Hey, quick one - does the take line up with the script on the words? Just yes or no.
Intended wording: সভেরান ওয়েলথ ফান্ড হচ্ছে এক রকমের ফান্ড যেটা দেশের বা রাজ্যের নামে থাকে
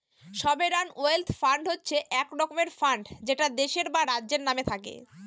yes